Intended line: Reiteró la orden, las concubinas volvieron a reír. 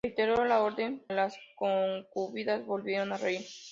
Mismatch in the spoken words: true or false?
false